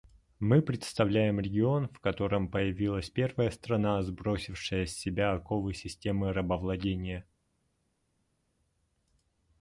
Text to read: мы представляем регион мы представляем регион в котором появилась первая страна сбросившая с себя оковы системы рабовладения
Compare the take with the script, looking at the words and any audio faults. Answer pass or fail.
fail